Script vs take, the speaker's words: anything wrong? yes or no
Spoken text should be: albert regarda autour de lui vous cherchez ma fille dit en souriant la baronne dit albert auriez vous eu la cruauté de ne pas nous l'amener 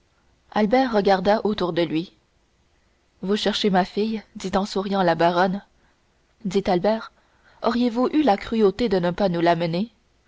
no